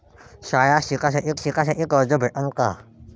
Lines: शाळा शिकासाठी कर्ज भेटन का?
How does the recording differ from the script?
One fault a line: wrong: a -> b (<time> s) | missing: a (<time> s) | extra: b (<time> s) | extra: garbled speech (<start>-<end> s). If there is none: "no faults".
extra: शिकासाठी (1.4 s)